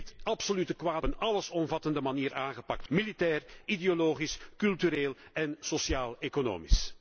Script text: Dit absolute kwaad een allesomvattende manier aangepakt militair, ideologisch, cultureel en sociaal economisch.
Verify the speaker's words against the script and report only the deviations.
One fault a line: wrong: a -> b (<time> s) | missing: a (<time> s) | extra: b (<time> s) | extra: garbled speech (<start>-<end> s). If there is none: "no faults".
no faults